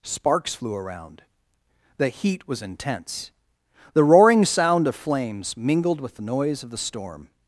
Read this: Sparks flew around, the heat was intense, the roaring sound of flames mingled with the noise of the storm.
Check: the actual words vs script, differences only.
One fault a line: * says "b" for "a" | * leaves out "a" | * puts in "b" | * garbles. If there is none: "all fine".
all fine